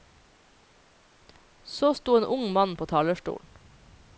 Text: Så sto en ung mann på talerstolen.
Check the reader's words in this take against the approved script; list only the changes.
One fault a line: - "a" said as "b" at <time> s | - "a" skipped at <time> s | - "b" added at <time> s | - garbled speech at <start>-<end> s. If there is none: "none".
none